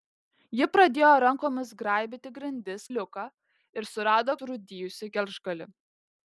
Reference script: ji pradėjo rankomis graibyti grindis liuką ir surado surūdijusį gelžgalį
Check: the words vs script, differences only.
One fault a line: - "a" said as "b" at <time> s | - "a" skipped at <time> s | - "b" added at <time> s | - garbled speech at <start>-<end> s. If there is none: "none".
none